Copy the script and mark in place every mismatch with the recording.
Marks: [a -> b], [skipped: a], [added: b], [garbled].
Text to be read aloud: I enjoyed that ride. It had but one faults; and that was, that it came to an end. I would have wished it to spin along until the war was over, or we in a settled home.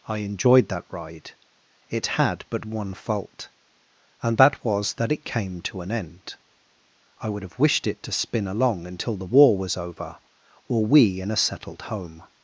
I enjoyed that ride. It had but one [faults; -> fault] and that was, that it came to an end. I would have wished it to spin along until the war was over, or we in a settled home.